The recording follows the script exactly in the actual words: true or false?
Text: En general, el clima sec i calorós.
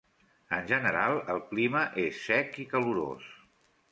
false